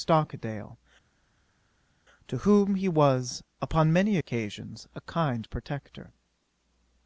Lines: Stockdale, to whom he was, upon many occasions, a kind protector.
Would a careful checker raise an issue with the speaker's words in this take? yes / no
no